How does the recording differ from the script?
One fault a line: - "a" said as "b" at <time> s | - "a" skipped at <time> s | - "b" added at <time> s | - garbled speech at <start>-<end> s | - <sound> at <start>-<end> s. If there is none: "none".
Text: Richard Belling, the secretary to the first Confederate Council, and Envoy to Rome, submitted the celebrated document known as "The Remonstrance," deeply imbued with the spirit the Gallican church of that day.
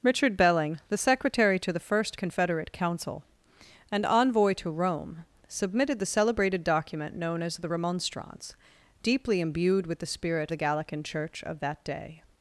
none